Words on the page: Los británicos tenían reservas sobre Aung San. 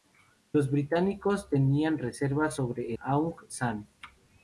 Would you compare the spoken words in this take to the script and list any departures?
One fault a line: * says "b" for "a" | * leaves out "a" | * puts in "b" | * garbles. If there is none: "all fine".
all fine